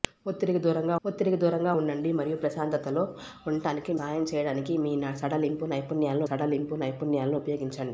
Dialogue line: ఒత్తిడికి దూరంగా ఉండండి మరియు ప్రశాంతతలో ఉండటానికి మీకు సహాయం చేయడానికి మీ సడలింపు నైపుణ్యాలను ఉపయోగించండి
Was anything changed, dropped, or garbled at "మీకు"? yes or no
yes